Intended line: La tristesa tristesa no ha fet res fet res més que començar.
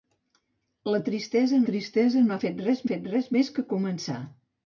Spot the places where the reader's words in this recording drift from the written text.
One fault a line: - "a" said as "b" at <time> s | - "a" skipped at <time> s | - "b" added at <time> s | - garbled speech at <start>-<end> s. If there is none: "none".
none